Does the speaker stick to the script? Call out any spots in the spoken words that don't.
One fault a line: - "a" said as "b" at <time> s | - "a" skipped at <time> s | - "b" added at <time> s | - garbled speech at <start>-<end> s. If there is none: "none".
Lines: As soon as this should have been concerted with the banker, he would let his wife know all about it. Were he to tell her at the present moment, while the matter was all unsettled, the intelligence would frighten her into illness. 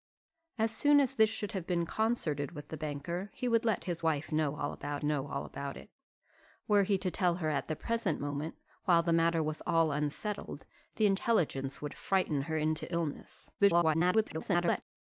- "know all about" added at 5.0 s
- garbled speech at 13.6-14.8 s